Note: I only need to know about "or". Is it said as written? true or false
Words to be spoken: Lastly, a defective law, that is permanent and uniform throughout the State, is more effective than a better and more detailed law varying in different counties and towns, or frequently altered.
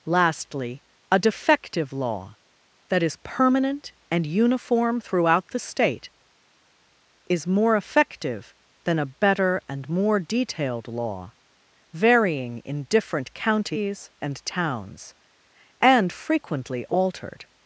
false